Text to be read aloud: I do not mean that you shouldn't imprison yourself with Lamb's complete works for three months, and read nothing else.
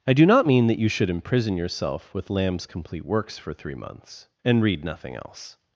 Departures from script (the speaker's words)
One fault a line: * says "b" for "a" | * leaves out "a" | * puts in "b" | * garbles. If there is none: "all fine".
* says "should" for "shouldn't"